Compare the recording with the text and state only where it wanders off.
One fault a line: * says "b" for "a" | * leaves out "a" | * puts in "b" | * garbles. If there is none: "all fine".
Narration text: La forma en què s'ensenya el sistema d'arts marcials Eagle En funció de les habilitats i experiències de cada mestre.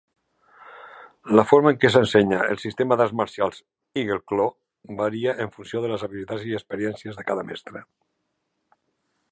* puts in "Claw varia"